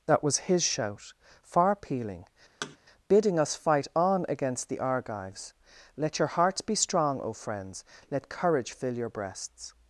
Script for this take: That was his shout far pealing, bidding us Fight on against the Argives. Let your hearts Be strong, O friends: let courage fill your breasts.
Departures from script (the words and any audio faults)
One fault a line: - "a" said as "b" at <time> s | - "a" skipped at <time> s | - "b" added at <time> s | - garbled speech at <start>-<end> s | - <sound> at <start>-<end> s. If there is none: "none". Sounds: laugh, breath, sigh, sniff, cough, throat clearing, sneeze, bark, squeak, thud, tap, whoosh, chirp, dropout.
- thud at 2.6-2.8 s